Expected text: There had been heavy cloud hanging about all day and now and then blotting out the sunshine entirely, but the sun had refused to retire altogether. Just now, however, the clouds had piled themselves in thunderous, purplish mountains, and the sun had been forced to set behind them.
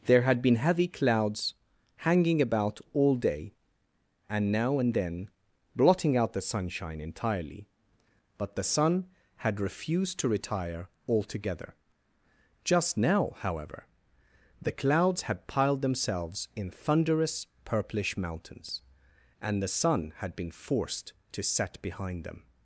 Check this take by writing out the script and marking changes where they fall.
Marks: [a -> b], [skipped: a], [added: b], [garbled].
There had been heavy [cloud -> clouds] hanging about all day and now and then blotting out the sunshine entirely, but the sun had refused to retire altogether. Just now, however, the clouds had piled themselves in thunderous, purplish mountains, and the sun had been forced to set behind them.